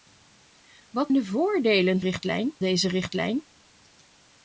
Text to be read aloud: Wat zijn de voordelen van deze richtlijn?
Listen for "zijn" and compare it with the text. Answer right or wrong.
wrong